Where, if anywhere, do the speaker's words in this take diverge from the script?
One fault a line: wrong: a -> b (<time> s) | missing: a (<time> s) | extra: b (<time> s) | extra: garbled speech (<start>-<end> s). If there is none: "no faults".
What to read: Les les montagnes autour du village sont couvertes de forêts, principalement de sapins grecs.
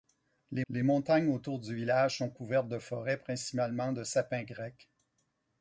no faults